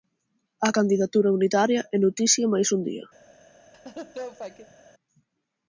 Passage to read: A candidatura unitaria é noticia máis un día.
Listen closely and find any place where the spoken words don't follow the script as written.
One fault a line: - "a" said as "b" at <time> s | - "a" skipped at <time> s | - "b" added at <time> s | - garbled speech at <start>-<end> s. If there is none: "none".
none